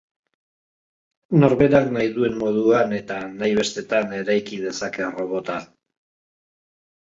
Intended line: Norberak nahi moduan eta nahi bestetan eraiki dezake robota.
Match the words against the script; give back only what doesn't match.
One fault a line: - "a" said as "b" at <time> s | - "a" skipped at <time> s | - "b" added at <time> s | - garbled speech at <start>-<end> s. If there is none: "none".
- "duen" added at 2.1 s